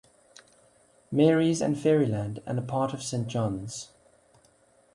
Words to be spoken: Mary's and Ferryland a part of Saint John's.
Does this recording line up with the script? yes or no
no